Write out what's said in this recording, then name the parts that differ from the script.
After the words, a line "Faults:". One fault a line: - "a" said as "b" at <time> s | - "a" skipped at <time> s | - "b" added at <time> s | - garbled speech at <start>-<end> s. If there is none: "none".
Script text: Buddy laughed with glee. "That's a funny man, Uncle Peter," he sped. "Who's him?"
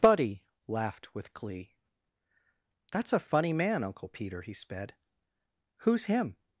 Buddy laughed with glee. "That's a funny man, Uncle Peter," he sped. "Who's him?"
Faults:
none